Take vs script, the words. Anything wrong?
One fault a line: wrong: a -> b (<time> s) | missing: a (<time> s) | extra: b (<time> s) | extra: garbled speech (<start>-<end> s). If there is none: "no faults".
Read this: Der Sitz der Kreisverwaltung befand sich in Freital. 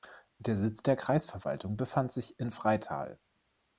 no faults